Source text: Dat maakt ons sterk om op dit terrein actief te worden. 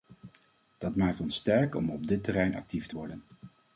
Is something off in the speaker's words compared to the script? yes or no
no